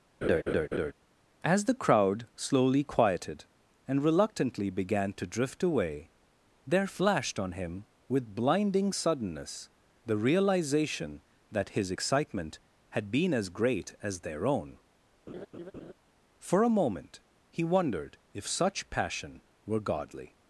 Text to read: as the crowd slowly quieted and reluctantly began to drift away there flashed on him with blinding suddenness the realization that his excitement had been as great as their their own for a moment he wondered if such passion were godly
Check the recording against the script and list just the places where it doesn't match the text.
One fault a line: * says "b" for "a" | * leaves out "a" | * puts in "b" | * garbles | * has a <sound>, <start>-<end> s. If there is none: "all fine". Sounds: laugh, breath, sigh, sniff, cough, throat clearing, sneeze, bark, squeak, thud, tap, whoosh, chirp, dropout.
* has a laugh, 0.2-0.9 s
* leaves out "their"
* has a laugh, 15.3-15.9 s